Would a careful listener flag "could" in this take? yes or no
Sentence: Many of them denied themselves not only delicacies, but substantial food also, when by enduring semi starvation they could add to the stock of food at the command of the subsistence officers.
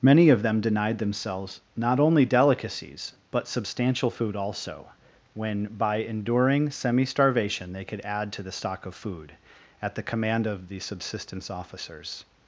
no